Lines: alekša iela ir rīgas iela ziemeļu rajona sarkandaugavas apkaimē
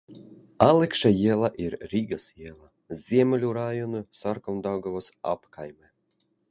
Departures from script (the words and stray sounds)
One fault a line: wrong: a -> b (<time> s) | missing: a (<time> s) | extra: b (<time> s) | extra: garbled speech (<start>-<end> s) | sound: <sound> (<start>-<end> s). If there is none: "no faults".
no faults